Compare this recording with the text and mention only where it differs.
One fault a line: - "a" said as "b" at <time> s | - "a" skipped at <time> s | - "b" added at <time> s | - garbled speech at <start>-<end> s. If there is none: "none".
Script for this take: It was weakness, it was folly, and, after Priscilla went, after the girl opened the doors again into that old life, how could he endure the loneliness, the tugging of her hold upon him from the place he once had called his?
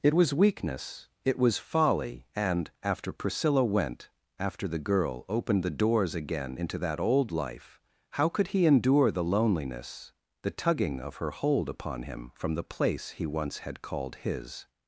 none